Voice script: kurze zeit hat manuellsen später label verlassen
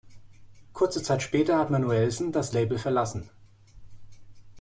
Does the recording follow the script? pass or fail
fail